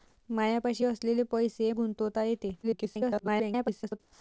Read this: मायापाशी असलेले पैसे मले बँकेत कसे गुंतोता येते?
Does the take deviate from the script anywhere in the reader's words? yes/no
yes